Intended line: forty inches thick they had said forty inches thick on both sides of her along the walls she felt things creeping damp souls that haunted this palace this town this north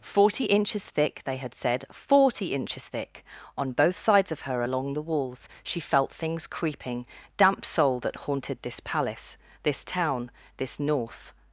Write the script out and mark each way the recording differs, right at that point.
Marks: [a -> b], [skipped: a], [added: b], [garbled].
forty inches thick they had said forty inches thick on both sides of her along the walls she felt things creeping damp [souls -> soul] that haunted this palace this town this north